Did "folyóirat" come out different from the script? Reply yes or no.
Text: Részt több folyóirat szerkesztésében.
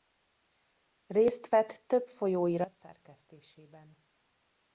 no